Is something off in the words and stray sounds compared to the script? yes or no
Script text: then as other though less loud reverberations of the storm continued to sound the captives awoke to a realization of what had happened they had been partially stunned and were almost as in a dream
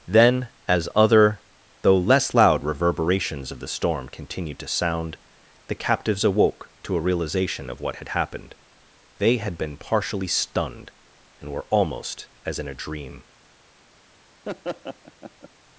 yes